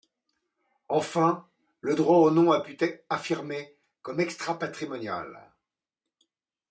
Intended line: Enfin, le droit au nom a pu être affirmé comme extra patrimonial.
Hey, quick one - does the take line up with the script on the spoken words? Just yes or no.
yes